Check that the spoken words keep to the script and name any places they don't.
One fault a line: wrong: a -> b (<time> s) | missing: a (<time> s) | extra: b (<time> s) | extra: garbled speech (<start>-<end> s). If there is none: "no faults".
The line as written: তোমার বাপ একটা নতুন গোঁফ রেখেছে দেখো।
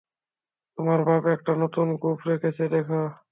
no faults